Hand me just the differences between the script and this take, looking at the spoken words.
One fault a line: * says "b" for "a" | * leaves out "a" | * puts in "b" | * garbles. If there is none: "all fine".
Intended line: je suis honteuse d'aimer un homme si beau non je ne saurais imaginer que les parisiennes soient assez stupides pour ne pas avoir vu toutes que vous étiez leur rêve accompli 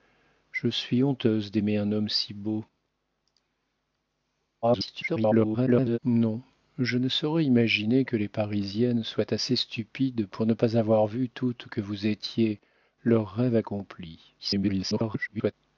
* garbles
* garbles